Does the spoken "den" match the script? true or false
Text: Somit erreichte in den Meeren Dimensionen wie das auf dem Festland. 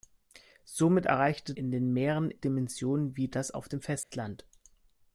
true